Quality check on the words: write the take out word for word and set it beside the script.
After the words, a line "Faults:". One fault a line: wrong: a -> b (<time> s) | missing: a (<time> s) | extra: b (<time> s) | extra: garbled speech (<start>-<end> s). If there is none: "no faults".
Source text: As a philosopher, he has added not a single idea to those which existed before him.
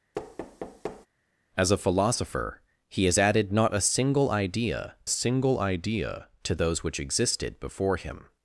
As a philosopher, he has added not a single idea single idea to those which existed before him.
Faults:
extra: single idea (5.1 s)